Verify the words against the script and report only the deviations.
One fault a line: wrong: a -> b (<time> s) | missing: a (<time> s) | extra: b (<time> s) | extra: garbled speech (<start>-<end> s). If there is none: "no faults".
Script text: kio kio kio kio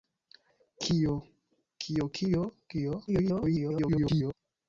extra: garbled speech (3.1-4.3 s)